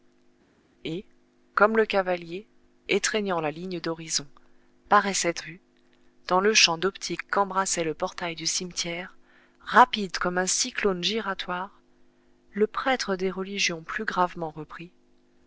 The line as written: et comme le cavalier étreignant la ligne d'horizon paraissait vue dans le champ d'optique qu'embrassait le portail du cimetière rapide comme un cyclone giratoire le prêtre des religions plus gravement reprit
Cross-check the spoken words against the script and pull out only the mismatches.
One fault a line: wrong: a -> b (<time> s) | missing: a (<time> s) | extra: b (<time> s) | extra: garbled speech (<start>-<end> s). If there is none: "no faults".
no faults